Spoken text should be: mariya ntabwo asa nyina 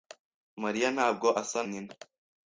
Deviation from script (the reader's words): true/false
false